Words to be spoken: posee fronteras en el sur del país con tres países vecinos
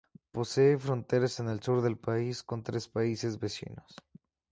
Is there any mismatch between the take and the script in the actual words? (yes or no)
no